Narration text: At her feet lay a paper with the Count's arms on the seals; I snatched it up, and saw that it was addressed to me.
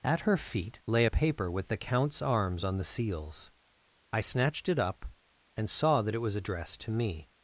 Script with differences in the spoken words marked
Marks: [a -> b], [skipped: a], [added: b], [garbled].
At her feet lay a paper with the Count's arms on the seals; I snatched it up, and saw that it was addressed to me.